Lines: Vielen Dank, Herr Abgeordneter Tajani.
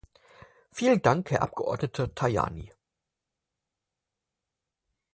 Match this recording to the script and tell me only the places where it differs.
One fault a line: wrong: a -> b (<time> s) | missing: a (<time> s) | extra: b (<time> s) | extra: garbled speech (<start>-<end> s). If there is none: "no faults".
no faults